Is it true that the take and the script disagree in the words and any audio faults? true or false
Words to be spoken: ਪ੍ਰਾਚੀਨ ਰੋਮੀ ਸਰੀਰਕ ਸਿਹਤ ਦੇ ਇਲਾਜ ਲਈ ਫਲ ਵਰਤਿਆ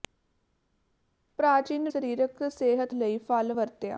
true